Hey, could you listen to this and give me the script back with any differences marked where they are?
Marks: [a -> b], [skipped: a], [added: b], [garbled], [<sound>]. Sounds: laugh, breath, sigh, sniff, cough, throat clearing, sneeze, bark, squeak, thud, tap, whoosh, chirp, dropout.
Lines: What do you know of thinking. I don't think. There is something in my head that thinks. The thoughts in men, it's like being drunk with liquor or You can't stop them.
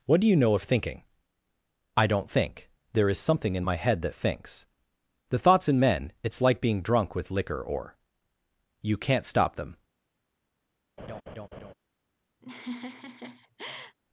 What do you know of thinking. I don't think. There is something in my head that thinks. The thoughts in men, it's like being drunk with liquor or You can't stop them. [laugh] [laugh]